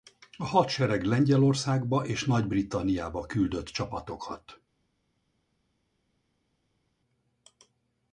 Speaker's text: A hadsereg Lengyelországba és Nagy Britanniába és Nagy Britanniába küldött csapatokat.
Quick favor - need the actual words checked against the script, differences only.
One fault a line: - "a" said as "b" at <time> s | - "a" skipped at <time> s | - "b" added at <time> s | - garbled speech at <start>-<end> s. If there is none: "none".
- "és Nagy Britanniába" skipped at 3.3 s